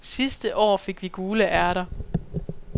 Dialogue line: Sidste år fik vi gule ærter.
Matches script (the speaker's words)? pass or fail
pass